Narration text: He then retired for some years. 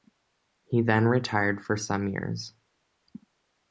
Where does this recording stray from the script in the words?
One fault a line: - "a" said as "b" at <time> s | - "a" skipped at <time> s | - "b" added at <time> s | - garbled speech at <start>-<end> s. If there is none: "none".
none